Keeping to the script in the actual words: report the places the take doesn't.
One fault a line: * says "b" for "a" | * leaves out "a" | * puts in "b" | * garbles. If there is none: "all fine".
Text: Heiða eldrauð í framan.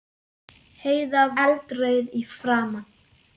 all fine